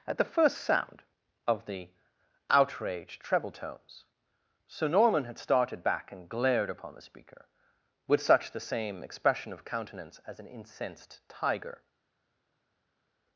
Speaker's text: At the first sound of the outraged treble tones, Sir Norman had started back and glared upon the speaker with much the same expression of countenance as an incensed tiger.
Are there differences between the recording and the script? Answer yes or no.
yes